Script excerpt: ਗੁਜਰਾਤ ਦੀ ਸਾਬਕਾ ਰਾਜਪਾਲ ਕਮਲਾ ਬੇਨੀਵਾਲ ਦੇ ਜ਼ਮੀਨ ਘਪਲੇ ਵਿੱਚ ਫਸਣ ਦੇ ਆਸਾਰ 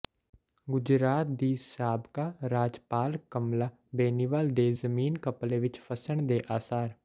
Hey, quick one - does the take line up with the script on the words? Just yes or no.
yes